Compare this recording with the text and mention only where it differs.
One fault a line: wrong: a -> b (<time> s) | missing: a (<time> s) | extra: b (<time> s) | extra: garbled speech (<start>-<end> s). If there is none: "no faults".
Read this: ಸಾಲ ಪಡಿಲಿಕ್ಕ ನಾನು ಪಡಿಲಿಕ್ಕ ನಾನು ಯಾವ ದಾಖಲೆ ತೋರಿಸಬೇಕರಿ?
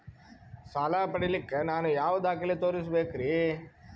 missing: ಪಡಿಲಿಕ್ಕ ನಾನು (1.9 s)